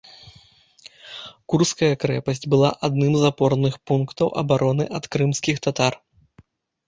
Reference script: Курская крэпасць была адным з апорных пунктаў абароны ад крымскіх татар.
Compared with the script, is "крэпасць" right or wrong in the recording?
right